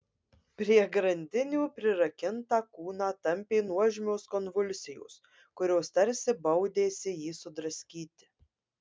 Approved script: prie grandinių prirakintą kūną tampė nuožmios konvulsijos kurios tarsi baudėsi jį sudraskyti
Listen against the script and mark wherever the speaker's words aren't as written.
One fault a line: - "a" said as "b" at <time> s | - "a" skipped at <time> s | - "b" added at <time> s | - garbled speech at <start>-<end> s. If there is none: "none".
none